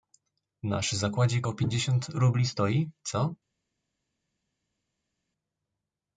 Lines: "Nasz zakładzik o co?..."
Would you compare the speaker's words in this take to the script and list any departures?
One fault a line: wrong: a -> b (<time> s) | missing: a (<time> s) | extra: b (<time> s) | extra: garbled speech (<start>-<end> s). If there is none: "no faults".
extra: pięćdziesiąt rubli stoi (1.5 s)